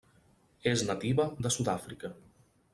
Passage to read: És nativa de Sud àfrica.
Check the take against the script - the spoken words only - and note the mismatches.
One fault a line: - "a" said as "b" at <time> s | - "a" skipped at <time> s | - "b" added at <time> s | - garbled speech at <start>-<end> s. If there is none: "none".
none